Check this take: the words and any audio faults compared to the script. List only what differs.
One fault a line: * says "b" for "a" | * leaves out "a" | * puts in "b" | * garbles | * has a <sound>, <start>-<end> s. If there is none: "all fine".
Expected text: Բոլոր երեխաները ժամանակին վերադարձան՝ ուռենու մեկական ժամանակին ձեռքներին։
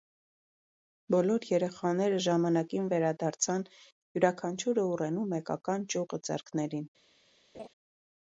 * puts in "յուրաքանչյուրը"
* says "ճյուղը" for "ժամանակին"
* has a laugh, 7.5-7.7 s